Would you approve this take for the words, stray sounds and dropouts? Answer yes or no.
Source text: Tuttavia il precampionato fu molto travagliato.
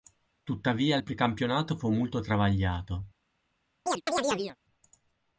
no